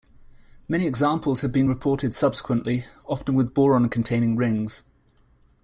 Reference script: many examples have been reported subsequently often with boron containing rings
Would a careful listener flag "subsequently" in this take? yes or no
no